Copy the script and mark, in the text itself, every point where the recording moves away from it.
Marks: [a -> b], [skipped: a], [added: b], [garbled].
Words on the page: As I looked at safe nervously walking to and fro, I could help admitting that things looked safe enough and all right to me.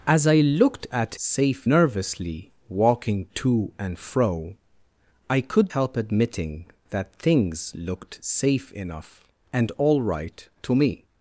As I looked at safe nervously walking to and fro, I could help admitting that things looked safe enough and all right to me.